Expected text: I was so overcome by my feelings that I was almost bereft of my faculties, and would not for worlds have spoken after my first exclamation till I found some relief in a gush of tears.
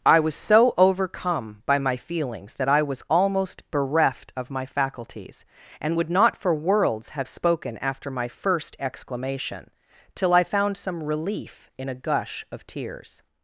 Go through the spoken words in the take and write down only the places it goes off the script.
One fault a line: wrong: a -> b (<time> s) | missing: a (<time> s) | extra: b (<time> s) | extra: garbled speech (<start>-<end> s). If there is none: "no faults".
no faults